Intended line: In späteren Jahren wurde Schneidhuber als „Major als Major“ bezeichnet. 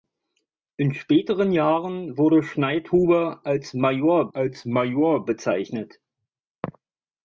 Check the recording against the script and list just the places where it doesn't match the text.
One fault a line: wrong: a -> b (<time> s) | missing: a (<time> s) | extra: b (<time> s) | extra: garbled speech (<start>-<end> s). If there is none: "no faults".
no faults